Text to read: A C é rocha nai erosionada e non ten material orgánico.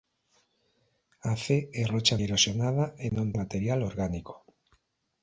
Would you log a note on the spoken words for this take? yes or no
yes